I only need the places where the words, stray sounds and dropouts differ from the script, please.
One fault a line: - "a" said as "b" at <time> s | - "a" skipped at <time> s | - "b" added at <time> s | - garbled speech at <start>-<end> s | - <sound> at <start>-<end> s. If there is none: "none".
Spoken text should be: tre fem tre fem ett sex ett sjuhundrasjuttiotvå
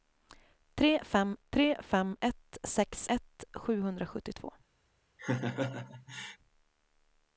- laugh at 5.2-6.4 s